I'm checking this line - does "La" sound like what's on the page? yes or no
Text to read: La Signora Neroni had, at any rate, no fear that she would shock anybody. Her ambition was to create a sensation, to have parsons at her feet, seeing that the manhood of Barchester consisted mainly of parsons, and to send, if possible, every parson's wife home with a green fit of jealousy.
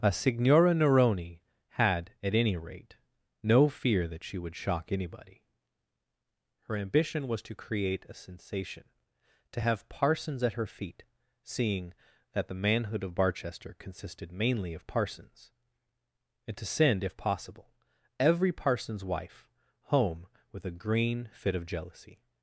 no